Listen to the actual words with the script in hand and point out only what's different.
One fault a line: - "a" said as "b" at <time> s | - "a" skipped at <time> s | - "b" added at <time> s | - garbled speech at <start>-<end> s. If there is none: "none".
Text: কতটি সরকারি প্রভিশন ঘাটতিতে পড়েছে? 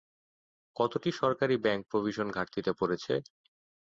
- "ব্যাংক" added at 1.6 s